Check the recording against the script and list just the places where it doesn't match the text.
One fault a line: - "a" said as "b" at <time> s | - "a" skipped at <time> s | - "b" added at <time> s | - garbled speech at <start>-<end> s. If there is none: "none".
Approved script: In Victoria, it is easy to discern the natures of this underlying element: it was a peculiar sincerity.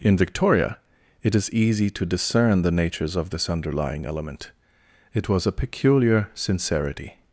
none